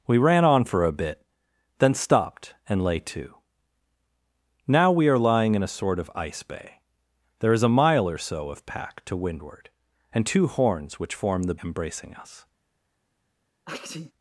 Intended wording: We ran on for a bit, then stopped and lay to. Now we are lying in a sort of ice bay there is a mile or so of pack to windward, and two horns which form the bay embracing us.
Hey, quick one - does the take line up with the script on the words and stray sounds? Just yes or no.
no